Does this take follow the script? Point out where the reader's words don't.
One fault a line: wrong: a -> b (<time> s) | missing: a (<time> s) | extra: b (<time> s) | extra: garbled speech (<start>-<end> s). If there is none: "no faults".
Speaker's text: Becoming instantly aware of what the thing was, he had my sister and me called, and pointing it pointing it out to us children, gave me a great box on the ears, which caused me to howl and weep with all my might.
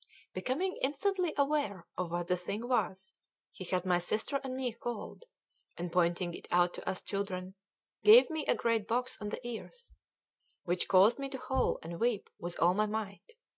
missing: pointing it (6.5 s)